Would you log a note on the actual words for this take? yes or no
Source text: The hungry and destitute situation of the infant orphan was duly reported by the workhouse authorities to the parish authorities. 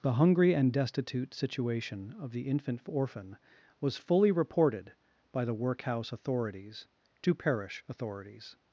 yes